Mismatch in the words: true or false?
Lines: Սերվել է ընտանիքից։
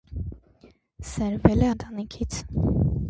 false